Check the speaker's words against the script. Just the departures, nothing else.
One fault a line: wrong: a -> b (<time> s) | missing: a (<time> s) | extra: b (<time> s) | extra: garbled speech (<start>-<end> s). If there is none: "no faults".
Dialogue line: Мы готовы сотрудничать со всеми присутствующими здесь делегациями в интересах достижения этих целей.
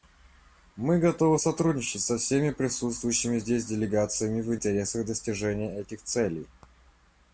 no faults